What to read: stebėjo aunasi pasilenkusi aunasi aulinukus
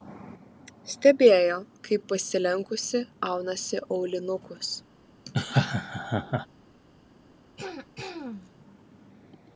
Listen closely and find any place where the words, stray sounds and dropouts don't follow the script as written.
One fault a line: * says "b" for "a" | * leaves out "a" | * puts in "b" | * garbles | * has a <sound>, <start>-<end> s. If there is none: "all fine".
* says "kaip" for "aunasi"
* has a laugh, 5.3-6.5 s
* has a throat clearing, 7.6-8.5 s